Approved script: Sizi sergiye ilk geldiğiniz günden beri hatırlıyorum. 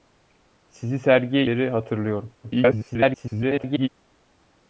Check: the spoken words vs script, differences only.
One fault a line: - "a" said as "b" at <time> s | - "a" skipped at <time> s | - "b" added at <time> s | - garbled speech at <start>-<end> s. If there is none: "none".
- "ilk geldiğiniz günden" skipped at 1.5 s
- garbled speech at 2.4-3.9 s